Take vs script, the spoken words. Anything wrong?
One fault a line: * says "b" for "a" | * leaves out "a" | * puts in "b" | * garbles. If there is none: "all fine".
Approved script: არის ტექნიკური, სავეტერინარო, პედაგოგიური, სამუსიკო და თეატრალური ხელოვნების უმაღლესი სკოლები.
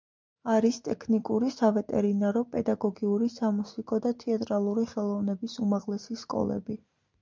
all fine